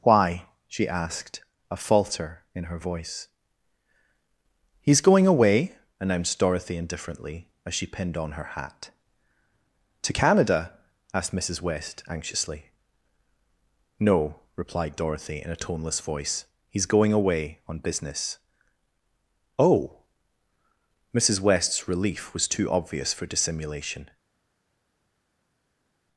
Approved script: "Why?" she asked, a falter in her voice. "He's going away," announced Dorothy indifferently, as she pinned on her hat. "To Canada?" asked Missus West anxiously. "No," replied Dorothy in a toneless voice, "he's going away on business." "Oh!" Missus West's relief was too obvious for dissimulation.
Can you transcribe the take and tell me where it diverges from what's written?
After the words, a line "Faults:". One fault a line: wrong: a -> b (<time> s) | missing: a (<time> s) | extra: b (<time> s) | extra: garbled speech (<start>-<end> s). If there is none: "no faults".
"Why?" she asked, a falter in her voice. "He's going away," announced Dorothy indifferently, as she pinned on her hat. "To Canada?" asked Missus West anxiously. "No," replied Dorothy in a toneless voice, "he's going away on business." "Oh!" Missus West's relief was too obvious for dissimulation.
Faults:
no faults